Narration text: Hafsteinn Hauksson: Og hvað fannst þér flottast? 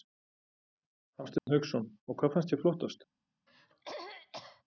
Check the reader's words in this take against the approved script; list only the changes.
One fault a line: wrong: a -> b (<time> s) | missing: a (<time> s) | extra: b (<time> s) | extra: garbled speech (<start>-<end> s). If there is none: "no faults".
no faults